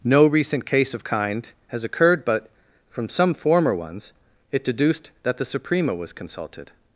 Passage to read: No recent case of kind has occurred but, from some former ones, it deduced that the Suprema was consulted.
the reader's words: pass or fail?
pass